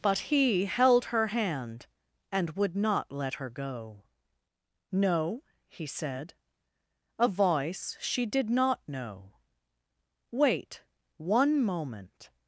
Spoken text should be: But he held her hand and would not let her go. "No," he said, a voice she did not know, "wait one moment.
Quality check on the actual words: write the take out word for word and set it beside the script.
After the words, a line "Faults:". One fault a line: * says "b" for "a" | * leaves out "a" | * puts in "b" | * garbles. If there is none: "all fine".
But he held her hand and would not let her go. "No," he said, a voice she did not know, "wait one moment.
Faults:
all fine